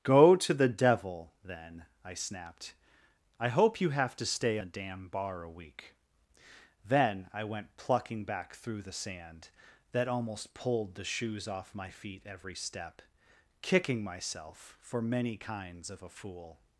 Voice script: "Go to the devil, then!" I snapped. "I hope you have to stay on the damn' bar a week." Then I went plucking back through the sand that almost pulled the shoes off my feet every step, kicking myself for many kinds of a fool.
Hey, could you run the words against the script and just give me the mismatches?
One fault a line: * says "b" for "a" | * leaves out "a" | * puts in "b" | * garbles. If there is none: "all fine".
* leaves out "on"